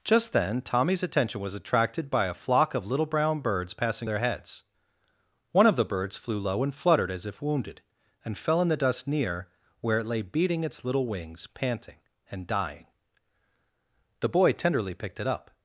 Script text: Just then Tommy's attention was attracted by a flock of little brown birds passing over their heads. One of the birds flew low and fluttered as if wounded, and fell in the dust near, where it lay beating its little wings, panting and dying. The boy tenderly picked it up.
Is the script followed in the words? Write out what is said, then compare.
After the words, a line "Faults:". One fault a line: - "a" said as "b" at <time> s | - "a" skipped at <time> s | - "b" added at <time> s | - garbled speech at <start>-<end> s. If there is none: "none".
Just then Tommy's attention was attracted by a flock of little brown birds passing their heads. One of the birds flew low and fluttered as if wounded, and fell in the dust near, where it lay beating its little wings, panting and dying. The boy tenderly picked it up.
Faults:
- "over" skipped at 4.1 s